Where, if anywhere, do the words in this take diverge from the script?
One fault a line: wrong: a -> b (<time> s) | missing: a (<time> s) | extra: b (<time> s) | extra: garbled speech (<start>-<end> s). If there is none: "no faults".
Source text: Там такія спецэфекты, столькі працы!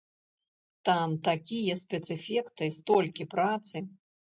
no faults